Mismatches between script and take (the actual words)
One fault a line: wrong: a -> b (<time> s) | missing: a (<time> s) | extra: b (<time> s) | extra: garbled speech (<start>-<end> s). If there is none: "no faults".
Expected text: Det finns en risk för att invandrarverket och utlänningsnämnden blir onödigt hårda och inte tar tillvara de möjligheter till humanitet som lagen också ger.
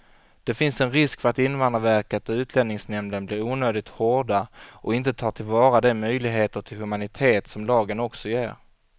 no faults